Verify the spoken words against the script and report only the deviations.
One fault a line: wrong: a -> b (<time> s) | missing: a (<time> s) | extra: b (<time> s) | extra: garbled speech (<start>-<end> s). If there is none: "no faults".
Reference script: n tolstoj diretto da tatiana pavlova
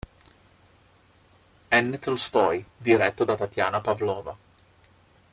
no faults